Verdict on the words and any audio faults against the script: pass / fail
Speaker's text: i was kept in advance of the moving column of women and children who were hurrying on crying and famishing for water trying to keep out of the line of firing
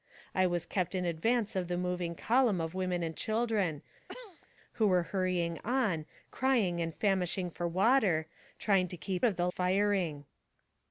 fail